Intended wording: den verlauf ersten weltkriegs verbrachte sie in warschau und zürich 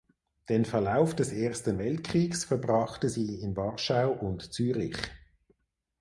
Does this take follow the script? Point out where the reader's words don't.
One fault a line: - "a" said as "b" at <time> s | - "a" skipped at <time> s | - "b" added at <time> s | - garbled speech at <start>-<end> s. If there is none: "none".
- "des" added at 1.1 s